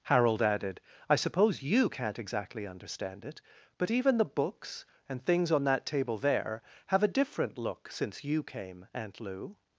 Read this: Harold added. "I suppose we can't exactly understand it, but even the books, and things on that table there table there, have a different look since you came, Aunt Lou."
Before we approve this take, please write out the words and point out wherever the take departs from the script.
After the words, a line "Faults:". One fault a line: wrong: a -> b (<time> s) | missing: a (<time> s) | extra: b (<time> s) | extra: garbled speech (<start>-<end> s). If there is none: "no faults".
Harold added. "I suppose you can't exactly understand it, but even the books, and things on that table there, have a different look since you came, Aunt Lou."
Faults:
wrong: we -> you (1.6 s)
missing: table there (6.6 s)